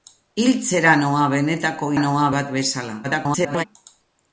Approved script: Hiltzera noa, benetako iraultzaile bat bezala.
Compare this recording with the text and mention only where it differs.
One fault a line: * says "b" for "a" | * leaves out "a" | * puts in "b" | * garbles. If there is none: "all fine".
* says "noa" for "iraultzaile"
* garbles